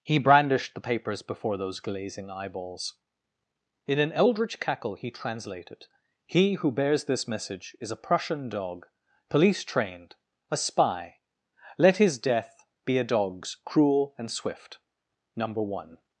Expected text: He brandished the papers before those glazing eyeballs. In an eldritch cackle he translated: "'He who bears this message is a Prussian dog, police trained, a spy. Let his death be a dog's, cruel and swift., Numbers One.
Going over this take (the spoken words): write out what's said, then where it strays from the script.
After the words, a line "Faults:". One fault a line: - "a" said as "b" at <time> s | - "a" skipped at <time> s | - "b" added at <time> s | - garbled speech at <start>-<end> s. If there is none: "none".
He brandished the papers before those glazing eyeballs. In an eldritch cackle he translated: "'He who bears this message is a Prussian dog, police trained, a spy. Let his death be a dog's, cruel and swift., Number One.
Faults:
- "Numbers" said as "Number" at 15.3 s